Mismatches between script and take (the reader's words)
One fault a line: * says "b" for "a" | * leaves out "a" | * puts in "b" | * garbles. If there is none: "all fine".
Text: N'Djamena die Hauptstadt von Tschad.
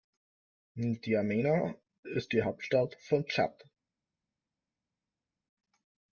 * puts in "ist"